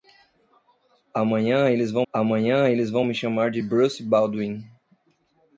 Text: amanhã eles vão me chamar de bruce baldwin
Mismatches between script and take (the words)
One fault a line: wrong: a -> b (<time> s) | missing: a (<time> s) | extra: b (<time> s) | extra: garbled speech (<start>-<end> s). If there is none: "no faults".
extra: amanhã eles vão (2.1 s)